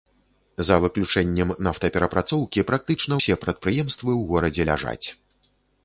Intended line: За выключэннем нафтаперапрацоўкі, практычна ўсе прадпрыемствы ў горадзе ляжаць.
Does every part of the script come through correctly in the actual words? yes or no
yes